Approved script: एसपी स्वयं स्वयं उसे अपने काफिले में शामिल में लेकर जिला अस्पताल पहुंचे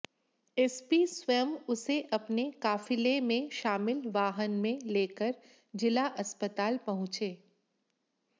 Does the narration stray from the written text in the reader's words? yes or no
yes